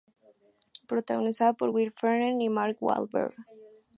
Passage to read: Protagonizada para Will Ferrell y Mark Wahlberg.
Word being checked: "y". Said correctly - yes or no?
yes